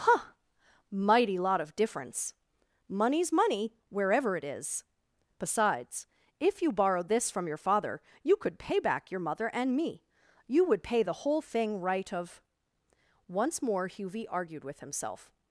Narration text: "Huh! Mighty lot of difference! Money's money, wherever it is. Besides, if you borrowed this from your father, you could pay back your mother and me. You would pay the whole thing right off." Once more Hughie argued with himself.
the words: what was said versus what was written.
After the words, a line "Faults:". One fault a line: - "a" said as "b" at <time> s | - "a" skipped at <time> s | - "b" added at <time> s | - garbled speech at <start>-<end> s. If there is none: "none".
"Huh! Mighty lot of difference! Money's money, wherever it is. Besides, if you borrowed this from your father, you could pay back your mother and me. You would pay the whole thing right of." Once more Hughie argued with himself.
Faults:
- "off" said as "of" at 12.1 s